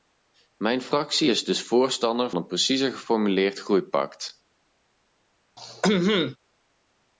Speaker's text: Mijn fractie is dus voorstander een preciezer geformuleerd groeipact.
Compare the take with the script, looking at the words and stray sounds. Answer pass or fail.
fail